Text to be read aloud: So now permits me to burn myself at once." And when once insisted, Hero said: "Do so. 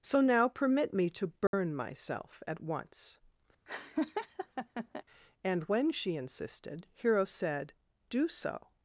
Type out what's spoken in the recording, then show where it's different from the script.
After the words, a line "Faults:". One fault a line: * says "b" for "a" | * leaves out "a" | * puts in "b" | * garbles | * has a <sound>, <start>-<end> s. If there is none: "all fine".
So now permit me to burn myself at once." And when she insisted, Hero said: "Do so.
Faults:
* says "permit" for "permits"
* has a dropout, 1.5-1.5 s
* has a laugh, 3.7-5.0 s
* says "she" for "once"